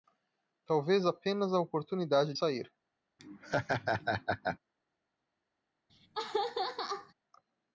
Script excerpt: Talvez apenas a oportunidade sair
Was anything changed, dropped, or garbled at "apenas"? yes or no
no